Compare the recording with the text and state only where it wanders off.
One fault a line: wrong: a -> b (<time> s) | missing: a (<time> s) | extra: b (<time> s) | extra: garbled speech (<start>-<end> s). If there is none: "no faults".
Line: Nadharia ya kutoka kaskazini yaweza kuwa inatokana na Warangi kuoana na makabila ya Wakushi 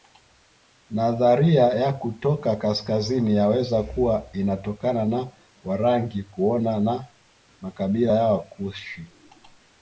no faults